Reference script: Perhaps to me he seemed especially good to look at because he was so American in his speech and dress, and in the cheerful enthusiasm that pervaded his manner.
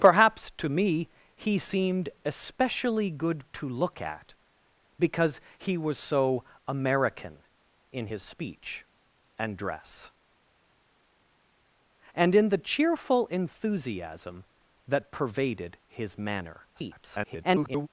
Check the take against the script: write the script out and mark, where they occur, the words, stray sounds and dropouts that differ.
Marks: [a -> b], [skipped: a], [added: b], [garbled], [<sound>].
Perhaps to me he seemed especially good to look at because he was so American in his speech and dress, and in the cheerful enthusiasm that pervaded his manner. [garbled]